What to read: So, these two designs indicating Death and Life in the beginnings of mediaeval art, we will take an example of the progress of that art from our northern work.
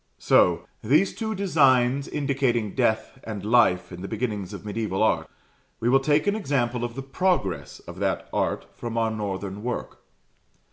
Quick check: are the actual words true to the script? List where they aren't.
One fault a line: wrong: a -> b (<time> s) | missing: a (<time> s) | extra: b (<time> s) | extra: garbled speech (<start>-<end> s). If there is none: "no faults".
no faults